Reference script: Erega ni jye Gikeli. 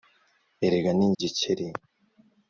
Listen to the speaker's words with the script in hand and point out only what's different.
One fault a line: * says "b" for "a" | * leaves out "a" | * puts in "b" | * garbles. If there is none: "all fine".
* leaves out "jye"